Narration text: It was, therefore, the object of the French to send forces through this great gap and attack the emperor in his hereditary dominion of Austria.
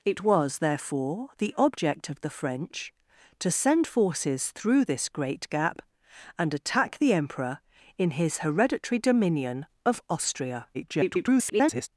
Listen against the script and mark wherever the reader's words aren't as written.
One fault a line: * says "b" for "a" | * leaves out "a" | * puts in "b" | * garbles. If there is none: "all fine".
* garbles